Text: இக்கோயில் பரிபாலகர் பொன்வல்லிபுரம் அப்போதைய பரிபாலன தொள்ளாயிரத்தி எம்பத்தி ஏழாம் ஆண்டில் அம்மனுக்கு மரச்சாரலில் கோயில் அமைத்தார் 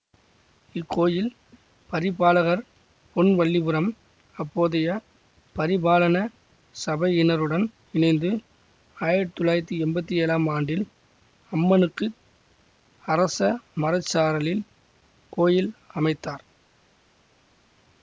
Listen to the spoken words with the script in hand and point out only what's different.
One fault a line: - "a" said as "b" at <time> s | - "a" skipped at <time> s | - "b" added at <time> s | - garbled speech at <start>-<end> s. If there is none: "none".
- "சபையினருடன் இணைந்து ஆயிரத்தி" added at 6.8 s
- "அரச" added at 13.1 s